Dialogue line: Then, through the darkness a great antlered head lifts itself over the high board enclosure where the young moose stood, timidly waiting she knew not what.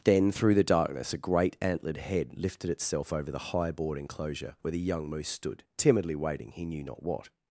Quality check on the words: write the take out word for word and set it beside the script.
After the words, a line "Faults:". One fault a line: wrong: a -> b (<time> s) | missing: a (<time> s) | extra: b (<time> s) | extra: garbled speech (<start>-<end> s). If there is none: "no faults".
Then, through the darkness a great antlered head lifted itself over the high board enclosure where the young moose stood, timidly waiting he knew not what.
Faults:
wrong: lifts -> lifted (2.4 s)
wrong: she -> he (6.5 s)